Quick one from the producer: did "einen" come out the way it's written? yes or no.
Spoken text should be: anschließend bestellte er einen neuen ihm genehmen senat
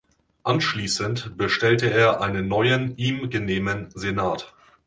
yes